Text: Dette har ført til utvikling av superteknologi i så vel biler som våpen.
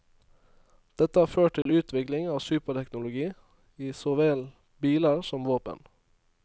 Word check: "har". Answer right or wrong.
right